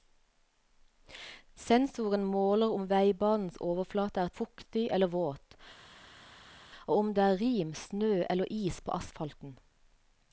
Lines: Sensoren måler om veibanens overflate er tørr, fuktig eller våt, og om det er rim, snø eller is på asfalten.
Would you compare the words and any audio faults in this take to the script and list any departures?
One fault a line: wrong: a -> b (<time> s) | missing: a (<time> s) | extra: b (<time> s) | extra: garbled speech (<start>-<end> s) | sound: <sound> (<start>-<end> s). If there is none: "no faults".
missing: tørr (4.3 s)